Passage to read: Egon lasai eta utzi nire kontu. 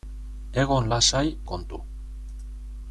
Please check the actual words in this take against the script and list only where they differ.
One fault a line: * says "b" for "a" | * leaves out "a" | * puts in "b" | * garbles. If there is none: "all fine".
* leaves out "eta utzi nire"